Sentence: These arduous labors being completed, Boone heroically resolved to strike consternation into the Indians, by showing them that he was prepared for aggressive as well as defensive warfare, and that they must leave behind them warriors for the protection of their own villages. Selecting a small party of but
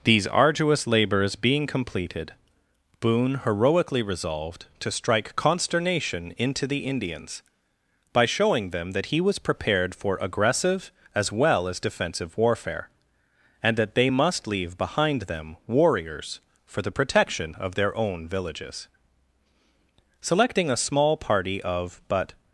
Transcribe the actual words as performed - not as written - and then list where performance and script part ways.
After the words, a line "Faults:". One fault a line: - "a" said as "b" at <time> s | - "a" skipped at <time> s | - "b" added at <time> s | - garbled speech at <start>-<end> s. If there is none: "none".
These arduous labors being completed, Boone heroically resolved to strike consternation into the Indians, by showing them that he was prepared for aggressive as well as defensive warfare, and that they must leave behind them warriors for the protection of their own villages. Selecting a small party of but
Faults:
none